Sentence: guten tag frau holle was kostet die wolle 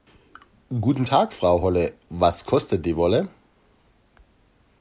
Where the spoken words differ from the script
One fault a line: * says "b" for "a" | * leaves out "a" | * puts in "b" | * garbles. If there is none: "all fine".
all fine